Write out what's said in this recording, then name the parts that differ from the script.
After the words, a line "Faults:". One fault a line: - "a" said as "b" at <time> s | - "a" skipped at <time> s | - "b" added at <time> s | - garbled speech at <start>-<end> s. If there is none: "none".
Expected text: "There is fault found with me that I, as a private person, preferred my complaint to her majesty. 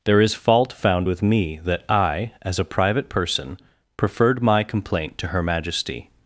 "There is fault found with me that I, as a private person, preferred my complaint to her majesty.
Faults:
none